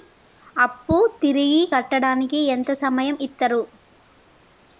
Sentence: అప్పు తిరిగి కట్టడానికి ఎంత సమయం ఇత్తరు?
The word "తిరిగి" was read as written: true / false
true